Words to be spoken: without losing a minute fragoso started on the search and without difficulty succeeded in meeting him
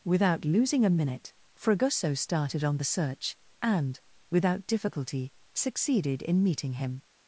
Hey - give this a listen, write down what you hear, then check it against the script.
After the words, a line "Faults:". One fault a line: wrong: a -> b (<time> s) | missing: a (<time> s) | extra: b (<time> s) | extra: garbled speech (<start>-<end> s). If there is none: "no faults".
without losing a minute fragoso started on the search and without difficulty succeeded in meeting him
Faults:
no faults